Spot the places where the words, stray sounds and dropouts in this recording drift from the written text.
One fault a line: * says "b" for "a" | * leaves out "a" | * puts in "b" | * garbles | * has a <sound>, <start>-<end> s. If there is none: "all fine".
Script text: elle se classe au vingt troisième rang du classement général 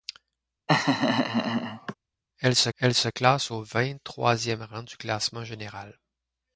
* has a laugh, 0.7-1.9 s
* puts in "elle se"